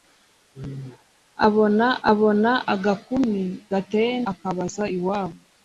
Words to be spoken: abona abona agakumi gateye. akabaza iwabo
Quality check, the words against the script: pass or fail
pass